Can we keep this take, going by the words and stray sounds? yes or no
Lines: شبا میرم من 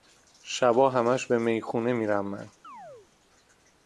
no